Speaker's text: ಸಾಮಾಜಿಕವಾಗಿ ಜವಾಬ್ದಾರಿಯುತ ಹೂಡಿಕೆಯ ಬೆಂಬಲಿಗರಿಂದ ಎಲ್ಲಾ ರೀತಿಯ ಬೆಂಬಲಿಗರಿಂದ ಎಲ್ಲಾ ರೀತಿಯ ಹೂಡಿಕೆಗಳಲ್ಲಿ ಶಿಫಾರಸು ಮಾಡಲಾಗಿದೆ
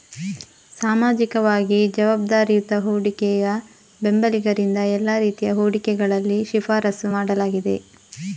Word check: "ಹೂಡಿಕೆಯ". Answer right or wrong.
right